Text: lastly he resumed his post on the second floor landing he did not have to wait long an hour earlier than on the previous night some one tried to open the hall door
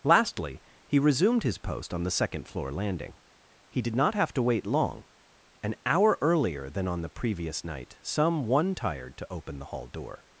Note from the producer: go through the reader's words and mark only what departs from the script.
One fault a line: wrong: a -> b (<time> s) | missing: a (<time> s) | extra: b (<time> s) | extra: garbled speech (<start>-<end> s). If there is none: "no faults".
wrong: tried -> tired (8.7 s)